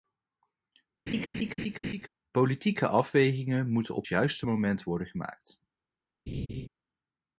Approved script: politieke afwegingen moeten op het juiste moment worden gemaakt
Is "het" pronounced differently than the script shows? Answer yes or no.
yes